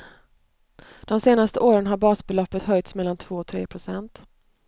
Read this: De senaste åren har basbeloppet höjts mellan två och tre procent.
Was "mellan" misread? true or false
false